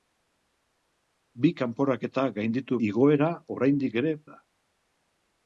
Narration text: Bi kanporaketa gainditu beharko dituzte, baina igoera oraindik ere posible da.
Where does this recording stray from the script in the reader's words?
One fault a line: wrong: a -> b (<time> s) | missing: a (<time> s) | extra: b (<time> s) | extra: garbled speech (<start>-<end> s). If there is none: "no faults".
missing: beharko dituzte baina (2.8 s)
missing: posible (4.1 s)